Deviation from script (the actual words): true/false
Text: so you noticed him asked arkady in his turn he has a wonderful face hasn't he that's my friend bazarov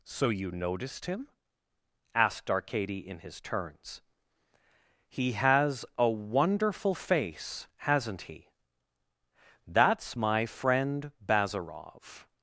true